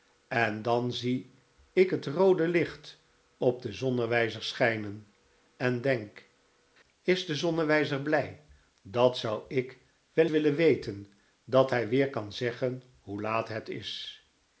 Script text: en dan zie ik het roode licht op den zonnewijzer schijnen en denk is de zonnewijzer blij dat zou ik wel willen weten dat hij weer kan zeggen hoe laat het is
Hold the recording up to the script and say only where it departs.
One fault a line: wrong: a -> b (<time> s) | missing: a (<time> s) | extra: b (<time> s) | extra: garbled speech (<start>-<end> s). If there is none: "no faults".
no faults